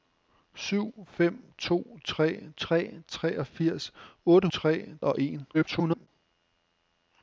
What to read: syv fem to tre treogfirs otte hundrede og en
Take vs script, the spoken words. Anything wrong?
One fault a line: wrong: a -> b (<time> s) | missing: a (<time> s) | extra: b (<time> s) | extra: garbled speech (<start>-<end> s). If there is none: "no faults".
extra: tre (2.6 s)
wrong: hundrede -> tre (4.5 s)
extra: garbled speech (5.5-6.1 s)